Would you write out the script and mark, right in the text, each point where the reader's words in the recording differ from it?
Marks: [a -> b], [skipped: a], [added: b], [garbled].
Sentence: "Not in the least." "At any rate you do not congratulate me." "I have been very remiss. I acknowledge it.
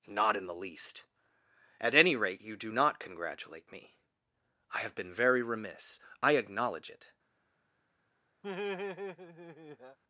"Not in the least." "At any rate you do not congratulate me." "I have been very remiss. I acknowledge it.